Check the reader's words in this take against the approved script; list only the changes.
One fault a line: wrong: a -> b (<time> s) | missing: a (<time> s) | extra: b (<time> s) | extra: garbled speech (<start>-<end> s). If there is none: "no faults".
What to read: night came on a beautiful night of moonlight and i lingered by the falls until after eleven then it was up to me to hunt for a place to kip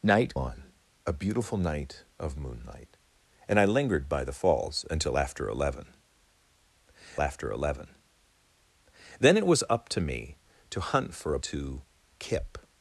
missing: came (0.3 s)
extra: after eleven (7.2 s)
missing: place (11.4 s)